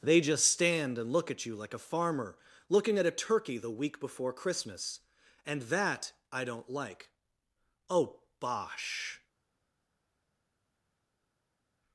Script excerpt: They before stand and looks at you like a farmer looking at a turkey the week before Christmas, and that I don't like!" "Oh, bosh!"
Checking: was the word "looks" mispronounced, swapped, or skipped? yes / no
yes